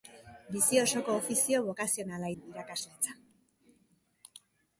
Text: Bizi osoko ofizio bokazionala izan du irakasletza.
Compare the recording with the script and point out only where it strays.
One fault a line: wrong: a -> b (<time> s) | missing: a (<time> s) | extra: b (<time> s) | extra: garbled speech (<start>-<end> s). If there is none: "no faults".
missing: izan (2.3 s)